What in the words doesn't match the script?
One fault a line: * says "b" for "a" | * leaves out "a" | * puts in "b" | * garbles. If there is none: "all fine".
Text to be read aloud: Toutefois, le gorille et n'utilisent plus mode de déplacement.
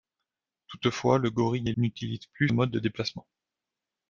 all fine